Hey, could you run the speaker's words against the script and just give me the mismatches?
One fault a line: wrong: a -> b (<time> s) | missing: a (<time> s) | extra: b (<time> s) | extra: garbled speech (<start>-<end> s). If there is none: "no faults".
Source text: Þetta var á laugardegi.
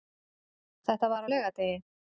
no faults